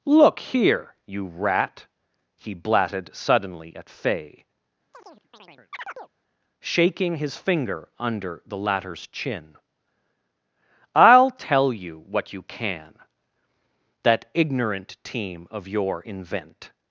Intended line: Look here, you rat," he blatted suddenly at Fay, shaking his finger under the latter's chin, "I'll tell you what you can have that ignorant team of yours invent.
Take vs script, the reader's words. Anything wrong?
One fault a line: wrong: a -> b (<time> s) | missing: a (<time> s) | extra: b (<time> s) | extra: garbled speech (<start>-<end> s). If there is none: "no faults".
missing: have (13.0 s)
wrong: yours -> your (15.7 s)